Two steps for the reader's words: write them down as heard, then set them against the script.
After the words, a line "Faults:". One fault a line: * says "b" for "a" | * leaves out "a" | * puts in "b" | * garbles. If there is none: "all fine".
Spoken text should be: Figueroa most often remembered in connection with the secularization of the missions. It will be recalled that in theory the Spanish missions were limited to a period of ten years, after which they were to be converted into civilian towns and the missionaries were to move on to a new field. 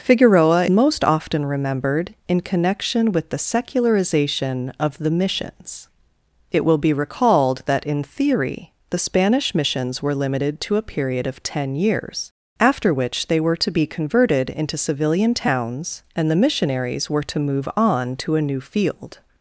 Figueroa most often remembered in connection with the secularization of the missions. It will be recalled that in theory the Spanish missions were limited to a period of ten years, after which they were to be converted into civilian towns and the missionaries were to move on to a new field.
Faults:
all fine